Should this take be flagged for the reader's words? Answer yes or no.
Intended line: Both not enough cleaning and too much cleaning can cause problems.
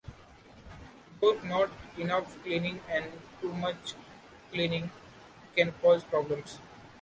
no